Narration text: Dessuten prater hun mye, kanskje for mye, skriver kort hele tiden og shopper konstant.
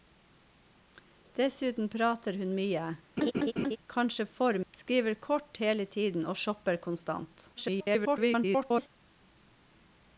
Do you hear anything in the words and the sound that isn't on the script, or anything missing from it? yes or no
yes